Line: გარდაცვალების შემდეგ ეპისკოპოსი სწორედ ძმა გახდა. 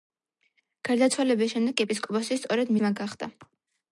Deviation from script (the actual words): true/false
false